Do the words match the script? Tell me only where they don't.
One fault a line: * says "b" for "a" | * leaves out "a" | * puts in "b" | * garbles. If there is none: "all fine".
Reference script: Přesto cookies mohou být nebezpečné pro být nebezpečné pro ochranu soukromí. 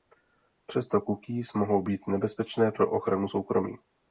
* leaves out "být nebezpečné pro"